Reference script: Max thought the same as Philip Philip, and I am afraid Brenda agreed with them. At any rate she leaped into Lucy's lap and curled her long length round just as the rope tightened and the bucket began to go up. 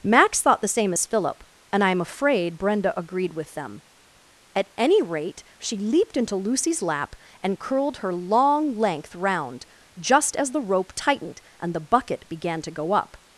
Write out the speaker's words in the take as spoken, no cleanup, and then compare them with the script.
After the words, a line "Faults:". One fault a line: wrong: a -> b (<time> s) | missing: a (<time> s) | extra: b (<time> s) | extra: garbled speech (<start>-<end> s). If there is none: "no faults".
Max thought the same as Philip, and I am afraid Brenda agreed with them. At any rate she leaped into Lucy's lap and curled her long length round just as the rope tightened and the bucket began to go up.
Faults:
missing: Philip (1.4 s)